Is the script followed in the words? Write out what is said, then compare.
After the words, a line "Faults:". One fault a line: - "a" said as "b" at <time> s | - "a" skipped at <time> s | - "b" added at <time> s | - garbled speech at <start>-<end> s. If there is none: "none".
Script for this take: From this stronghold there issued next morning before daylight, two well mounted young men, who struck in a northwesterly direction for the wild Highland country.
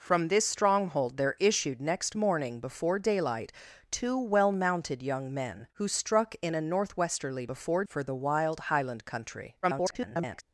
From this stronghold there issued next morning before daylight, two well mounted young men, who struck in a northwesterly before for the wild Highland country. [garbled]
Faults:
- "direction" said as "before" at 7.4 s
- garbled speech at 9.6-10.4 s